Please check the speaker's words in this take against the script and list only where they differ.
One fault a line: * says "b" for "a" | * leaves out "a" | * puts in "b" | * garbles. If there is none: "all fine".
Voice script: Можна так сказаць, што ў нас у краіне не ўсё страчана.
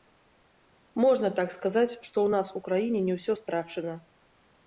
all fine